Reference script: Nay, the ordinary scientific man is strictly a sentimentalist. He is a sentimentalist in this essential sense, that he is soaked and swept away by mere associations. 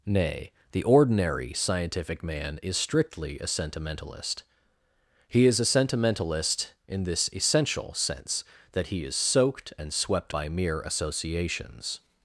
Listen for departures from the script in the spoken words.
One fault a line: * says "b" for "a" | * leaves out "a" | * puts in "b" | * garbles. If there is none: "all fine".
* leaves out "away"